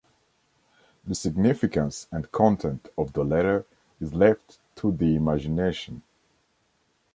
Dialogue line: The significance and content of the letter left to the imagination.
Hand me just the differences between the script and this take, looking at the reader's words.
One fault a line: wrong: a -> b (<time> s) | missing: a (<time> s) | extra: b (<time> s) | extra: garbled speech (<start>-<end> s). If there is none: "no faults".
extra: is (4.0 s)